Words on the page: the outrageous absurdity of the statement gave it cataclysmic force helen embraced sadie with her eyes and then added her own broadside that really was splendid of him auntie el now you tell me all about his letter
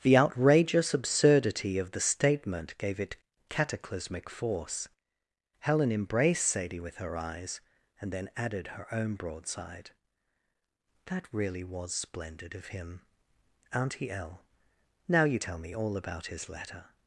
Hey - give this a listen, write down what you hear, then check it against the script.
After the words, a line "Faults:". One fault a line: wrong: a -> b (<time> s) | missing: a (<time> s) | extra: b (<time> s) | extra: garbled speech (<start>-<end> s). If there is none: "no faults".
the outrageous absurdity of the statement gave it cataclysmic force helen embraced sadie with her eyes and then added her own broadside that really was splendid of him auntie el now you tell me all about his letter
Faults:
no faults